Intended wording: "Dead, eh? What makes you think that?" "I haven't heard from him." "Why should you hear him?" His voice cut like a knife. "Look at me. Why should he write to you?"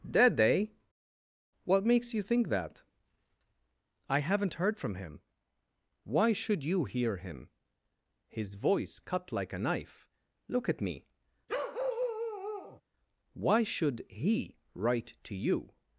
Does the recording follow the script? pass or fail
pass